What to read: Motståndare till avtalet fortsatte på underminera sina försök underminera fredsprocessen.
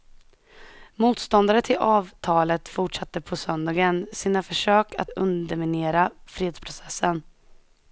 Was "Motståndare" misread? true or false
false